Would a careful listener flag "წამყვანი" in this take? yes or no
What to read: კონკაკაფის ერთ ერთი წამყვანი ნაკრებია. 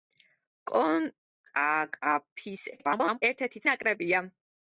yes